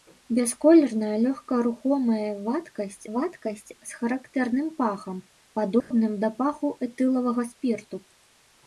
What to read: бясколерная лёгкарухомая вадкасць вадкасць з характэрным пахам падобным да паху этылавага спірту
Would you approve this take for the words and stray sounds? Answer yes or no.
no